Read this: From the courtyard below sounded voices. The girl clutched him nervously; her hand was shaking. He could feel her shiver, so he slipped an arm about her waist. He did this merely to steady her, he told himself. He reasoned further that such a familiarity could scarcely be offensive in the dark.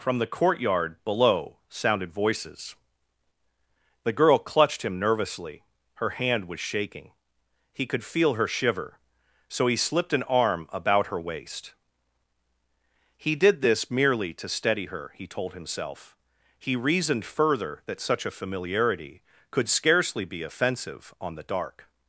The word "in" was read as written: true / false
false